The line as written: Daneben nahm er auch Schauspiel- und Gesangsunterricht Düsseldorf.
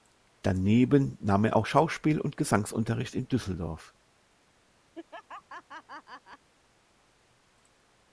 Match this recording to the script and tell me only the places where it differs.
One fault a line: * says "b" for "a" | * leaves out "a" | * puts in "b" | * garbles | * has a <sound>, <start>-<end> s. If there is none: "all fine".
* puts in "in"
* has a laugh, 4.9-6.5 s